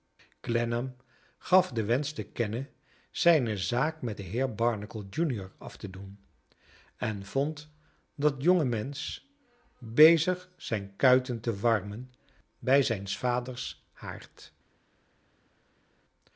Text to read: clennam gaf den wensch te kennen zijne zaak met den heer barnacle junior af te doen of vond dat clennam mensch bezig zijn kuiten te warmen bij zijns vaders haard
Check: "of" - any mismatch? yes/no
yes